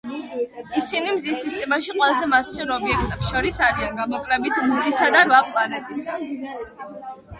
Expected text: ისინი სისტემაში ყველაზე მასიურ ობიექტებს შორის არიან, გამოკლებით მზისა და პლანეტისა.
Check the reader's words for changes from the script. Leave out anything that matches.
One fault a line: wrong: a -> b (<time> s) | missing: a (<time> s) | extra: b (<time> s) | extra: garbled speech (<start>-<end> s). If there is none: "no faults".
extra: მზის (1.2 s)
extra: რვა (5.3 s)